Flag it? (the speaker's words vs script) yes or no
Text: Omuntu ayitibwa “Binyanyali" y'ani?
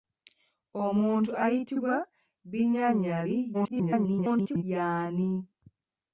yes